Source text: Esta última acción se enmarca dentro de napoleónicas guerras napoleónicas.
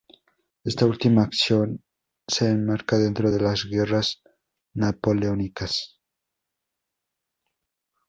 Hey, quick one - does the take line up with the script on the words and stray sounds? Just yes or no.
no